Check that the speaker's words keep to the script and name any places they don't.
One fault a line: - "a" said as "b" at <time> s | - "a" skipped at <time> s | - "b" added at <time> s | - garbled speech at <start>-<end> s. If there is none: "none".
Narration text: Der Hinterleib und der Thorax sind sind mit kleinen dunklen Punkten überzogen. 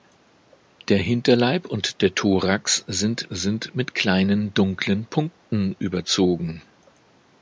none